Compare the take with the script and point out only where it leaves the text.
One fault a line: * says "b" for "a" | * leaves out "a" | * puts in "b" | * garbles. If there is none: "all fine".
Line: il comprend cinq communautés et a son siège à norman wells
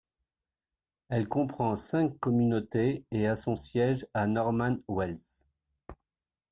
* says "elle" for "il"